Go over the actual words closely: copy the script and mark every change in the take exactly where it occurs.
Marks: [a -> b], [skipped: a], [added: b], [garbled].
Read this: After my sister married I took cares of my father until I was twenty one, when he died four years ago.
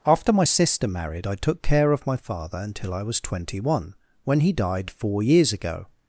After my sister married I took [cares -> care] of my father until I was twenty one, when he died four years ago.